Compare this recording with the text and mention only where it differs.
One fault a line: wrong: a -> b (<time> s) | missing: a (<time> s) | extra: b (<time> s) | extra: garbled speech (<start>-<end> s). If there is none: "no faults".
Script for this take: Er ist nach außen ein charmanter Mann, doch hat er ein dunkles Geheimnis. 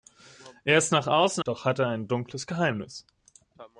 missing: ein charmanter Mann (1.4 s)